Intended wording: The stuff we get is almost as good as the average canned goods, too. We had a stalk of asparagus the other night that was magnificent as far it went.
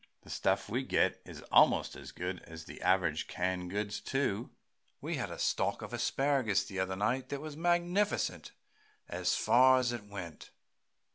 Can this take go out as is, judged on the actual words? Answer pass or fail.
fail